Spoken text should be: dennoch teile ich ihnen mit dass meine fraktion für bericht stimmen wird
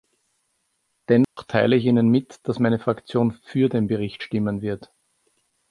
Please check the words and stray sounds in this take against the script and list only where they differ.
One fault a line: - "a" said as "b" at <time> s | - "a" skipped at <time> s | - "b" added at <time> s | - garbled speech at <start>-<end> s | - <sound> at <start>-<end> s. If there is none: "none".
- dropout at 1.2-1.4 s
- "den" added at 3.7 s